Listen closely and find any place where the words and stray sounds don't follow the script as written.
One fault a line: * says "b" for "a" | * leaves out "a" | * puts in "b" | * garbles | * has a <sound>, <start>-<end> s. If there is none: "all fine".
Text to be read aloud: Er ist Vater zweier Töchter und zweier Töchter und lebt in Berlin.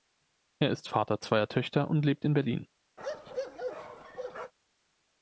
* leaves out "zweier Töchter und"
* has a bark, 3.0-4.5 s